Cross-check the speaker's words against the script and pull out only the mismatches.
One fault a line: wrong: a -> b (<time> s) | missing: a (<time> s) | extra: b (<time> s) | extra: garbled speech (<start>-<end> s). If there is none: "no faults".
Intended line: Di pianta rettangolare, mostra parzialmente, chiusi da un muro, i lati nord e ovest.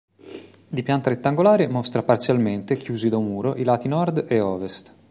no faults